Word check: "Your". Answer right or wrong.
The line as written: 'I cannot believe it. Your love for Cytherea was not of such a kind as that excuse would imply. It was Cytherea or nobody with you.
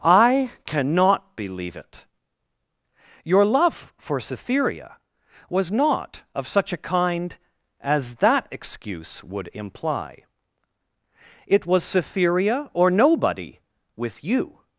right